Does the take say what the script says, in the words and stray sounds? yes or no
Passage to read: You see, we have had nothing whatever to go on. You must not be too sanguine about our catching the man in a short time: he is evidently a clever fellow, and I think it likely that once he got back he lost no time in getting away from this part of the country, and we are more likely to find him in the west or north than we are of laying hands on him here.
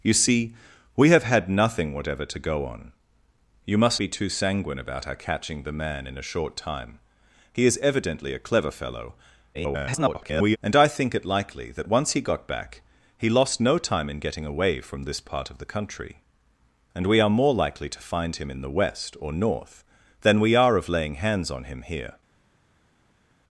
no